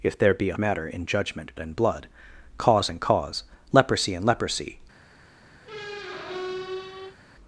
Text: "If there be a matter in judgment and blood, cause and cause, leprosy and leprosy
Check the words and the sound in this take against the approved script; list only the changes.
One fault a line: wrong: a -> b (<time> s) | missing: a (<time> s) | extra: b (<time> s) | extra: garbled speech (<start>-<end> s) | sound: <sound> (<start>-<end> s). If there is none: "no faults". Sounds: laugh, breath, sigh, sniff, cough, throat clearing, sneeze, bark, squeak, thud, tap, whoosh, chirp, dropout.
sound: squeak (5.6-7.2 s)